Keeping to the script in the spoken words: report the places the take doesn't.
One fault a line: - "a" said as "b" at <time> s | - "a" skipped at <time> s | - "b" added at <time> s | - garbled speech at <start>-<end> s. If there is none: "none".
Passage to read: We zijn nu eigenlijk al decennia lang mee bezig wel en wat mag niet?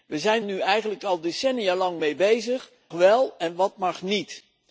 none